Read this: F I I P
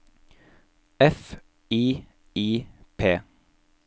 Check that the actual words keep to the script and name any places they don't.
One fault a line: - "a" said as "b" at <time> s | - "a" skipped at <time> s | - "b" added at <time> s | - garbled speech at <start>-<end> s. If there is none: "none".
none